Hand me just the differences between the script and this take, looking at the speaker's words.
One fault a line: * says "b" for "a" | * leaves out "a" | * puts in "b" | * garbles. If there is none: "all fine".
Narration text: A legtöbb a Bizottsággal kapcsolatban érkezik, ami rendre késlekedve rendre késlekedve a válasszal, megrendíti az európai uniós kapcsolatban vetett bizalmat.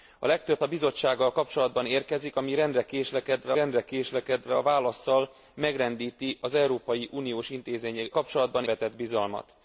all fine